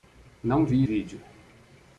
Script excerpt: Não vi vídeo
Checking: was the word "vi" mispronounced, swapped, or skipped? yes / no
no